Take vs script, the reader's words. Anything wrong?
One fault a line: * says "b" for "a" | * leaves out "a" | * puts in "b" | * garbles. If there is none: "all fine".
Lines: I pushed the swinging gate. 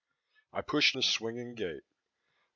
all fine